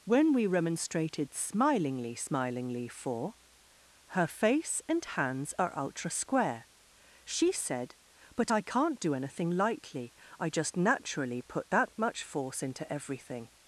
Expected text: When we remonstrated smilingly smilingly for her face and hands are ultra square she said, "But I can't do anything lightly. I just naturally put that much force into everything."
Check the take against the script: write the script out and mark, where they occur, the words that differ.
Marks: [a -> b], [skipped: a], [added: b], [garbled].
When we remonstrated smilingly smilingly for her face and hands are ultra square she said, "But I can't do anything lightly. I just naturally put that much force into everything."